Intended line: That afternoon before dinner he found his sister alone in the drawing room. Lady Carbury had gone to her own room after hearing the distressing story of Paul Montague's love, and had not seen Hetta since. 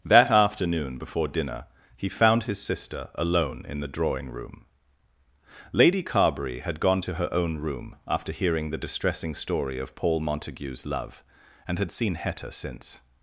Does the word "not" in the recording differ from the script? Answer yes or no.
yes